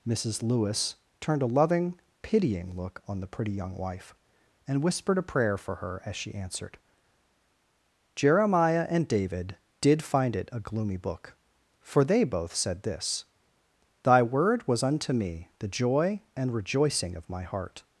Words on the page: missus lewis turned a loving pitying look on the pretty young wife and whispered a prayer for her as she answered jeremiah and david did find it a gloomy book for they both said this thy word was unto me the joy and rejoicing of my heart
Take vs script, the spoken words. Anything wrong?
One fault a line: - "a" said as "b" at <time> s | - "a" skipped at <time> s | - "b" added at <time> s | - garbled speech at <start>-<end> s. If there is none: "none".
none